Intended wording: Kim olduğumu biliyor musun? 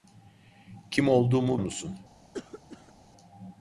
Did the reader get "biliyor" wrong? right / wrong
wrong